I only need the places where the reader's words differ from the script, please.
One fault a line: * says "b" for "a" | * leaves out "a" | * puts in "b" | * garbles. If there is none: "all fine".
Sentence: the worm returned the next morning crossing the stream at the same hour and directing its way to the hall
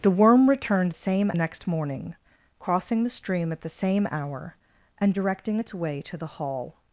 * says "same" for "the"